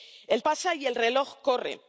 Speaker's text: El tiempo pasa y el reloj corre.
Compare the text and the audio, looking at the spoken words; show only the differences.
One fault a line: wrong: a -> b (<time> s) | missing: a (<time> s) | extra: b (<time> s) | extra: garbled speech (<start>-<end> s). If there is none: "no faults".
missing: tiempo (0.4 s)